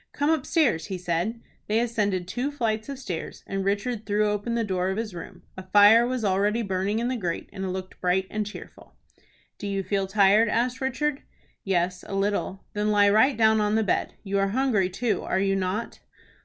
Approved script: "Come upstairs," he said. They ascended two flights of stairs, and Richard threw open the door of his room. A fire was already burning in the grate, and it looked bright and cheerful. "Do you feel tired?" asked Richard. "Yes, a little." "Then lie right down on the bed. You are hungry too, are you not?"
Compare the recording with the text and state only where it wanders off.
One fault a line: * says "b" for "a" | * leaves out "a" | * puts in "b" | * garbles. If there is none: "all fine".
all fine